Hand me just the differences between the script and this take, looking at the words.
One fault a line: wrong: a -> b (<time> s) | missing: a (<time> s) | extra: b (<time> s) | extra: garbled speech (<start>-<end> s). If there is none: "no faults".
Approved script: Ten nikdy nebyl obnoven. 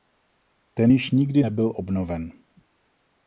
extra: již (0.9 s)